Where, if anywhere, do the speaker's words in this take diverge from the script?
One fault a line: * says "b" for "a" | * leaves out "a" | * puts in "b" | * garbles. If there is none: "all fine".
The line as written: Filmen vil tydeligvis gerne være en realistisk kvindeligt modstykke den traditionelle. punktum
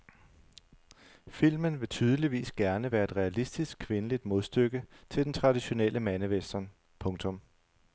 * says "et" for "en"
* puts in "til"
* puts in "mandewestern"